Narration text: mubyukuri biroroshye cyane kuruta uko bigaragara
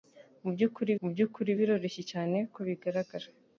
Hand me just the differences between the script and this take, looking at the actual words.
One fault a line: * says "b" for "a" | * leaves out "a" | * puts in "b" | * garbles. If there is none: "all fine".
* puts in "mubyukuri"
* leaves out "kuruta"